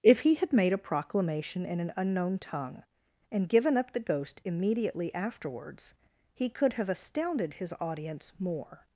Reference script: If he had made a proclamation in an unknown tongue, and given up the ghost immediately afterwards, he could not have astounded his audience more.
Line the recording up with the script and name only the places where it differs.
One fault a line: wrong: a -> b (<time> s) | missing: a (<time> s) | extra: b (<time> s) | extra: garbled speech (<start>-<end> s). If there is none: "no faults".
missing: not (6.7 s)